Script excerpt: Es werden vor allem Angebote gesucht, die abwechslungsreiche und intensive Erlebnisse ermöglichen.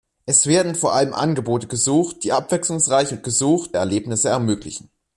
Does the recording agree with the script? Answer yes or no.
no